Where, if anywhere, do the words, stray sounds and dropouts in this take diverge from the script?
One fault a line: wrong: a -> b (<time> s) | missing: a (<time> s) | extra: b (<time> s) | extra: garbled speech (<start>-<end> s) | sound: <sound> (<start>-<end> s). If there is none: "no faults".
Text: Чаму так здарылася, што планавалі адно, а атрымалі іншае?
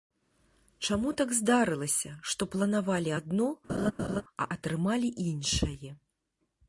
sound: laugh (3.7-4.2 s)